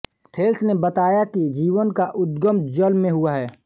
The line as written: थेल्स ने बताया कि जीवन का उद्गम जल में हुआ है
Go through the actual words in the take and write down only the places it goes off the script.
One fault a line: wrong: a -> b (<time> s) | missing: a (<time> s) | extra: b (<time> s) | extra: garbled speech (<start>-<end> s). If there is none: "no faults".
no faults